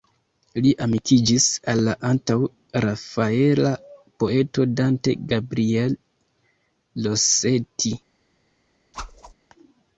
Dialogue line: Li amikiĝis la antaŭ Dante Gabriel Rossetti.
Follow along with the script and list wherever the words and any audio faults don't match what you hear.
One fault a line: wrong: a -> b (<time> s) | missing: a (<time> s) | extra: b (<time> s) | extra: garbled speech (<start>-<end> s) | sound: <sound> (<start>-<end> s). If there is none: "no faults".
extra: al (1.7 s)
extra: rafaela poeto (2.9 s)
sound: whoosh (8.9-9.3 s)